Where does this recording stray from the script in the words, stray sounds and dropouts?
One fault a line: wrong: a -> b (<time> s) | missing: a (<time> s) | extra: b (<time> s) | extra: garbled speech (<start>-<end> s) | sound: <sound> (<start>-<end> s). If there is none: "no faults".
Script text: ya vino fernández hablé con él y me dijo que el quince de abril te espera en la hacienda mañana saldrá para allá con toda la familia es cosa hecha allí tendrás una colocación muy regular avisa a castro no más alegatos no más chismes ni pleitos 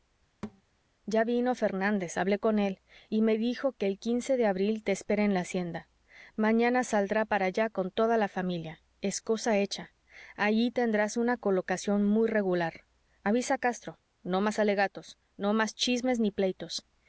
sound: thud (0.4-0.6 s)